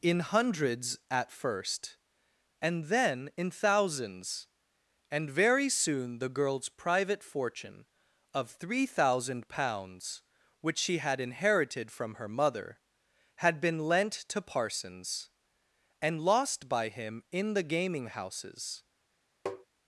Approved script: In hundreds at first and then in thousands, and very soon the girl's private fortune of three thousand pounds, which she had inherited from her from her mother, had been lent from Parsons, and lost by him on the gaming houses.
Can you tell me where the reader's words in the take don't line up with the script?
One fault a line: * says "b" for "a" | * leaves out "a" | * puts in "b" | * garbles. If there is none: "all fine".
* leaves out "from her"
* says "to" for "from"
* says "in" for "on"